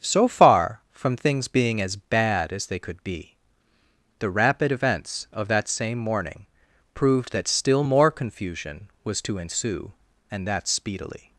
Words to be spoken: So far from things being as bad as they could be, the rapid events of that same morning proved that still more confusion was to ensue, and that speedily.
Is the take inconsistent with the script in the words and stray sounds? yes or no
no